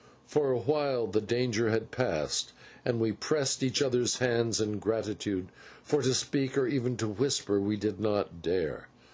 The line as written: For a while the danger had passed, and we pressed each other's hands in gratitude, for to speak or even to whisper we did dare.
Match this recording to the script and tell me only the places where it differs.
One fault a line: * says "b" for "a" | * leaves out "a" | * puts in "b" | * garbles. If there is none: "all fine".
* puts in "not"